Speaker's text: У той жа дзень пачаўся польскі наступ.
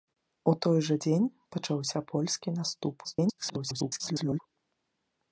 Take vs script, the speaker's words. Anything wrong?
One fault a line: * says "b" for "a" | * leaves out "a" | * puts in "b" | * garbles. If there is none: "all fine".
* garbles